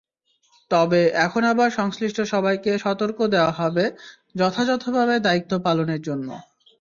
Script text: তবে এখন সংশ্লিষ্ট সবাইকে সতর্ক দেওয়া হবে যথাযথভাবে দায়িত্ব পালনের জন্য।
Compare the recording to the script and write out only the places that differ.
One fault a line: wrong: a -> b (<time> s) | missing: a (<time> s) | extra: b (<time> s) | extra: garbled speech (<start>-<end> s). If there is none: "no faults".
extra: আবার (1.4 s)